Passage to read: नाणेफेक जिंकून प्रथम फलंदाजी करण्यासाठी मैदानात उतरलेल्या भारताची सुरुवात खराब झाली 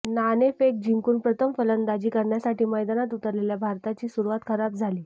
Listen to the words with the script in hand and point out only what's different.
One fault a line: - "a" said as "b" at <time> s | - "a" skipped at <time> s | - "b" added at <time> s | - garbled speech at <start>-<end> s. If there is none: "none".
none